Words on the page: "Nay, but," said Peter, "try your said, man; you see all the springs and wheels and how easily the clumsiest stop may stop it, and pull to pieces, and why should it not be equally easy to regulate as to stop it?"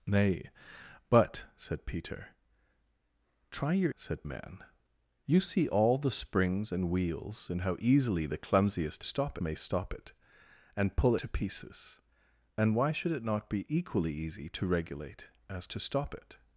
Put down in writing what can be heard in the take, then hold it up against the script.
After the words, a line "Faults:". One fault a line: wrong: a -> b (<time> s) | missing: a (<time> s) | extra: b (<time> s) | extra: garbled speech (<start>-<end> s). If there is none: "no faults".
"Nay, but," said Peter, "try your said, man; you see all the springs and wheels and how easily the clumsiest stop may stop it, and pull to pieces, and why should it not be equally easy to regulate as to stop it?"
Faults:
no faults